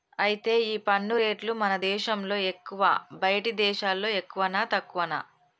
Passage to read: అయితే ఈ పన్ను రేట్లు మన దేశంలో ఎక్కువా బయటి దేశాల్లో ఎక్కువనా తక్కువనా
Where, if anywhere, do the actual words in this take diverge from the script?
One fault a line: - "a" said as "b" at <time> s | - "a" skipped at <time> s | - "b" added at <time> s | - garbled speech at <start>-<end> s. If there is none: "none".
none